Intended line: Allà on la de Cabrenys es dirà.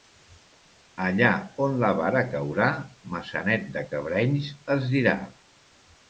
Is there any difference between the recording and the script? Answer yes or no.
yes